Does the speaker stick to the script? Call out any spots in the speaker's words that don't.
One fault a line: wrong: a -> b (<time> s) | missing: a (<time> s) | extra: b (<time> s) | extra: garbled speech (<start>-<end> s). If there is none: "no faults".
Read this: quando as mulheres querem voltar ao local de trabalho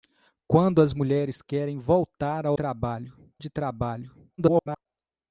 wrong: local -> trabalho (2.5 s)
extra: garbled speech (4.4-4.9 s)